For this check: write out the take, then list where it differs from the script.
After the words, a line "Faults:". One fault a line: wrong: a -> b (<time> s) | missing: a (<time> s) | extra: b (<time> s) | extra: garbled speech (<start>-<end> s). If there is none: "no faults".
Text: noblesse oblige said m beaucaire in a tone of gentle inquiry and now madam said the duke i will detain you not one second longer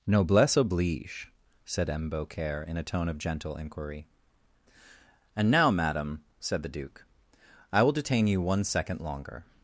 noblesse oblige said m beaucaire in a tone of gentle inquiry and now madam said the duke i will detain you one second longer
Faults:
missing: not (8.4 s)